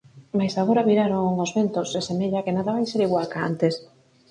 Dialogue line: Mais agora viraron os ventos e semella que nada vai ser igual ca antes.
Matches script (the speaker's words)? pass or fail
pass